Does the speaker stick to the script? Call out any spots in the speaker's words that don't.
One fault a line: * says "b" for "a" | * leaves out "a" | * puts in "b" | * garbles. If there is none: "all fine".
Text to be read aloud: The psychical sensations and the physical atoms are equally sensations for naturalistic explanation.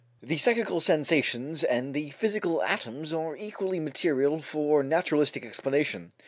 * says "material" for "sensations"